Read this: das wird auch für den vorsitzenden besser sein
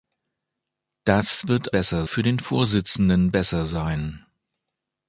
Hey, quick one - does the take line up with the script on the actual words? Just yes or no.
no